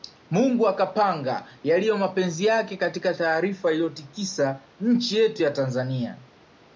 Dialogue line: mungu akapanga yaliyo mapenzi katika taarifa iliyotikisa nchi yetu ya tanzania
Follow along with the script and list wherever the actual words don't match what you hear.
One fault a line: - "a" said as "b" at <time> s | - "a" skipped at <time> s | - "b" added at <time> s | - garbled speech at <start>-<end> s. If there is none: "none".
- "yake" added at 2.5 s